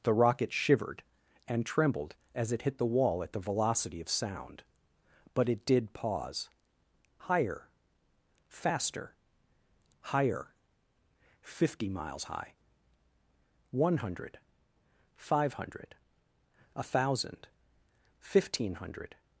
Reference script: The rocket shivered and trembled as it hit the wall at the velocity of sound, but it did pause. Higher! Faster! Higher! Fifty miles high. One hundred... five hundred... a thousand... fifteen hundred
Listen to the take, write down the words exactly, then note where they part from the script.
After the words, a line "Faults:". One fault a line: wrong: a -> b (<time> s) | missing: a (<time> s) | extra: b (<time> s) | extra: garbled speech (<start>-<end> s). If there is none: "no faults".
The rocket shivered and trembled as it hit the wall at the velocity of sound, but it did pause. Higher! Faster! Higher! Fifty miles high. One hundred... five hundred... a thousand... fifteen hundred
Faults:
no faults